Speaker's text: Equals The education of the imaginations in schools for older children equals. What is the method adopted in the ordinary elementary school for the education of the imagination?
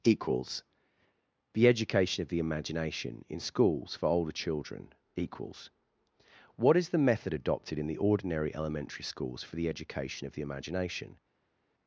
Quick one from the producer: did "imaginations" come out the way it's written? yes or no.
no